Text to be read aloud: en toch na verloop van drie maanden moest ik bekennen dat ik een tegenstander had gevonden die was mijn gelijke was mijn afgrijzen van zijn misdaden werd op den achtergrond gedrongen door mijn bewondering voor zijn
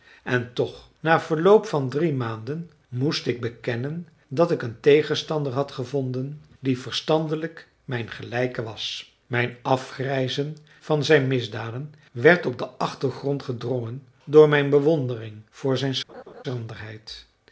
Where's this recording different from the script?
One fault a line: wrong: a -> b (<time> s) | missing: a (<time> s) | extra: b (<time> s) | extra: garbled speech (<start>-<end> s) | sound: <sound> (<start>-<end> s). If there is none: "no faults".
wrong: was -> verstandelijk (6.8 s)
sound: laugh (16.1-16.4 s)